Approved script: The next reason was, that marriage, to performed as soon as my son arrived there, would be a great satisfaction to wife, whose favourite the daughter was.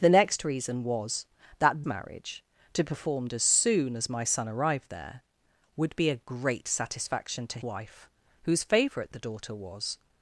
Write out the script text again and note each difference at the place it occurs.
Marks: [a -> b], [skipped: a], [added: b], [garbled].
The next reason was, that marriage, to performed as soon as my son arrived there, would be a great satisfaction to wife, whose favourite the daughter was.